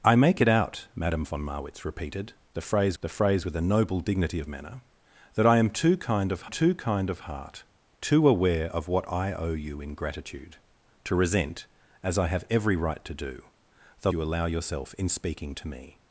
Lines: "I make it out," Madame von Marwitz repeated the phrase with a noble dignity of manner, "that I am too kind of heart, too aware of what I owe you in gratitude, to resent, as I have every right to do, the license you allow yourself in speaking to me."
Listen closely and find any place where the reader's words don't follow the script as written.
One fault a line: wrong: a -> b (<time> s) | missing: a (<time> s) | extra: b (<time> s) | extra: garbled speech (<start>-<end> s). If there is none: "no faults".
extra: the phrase (3.0 s)
extra: too kind of (6.5 s)
missing: license (14.1 s)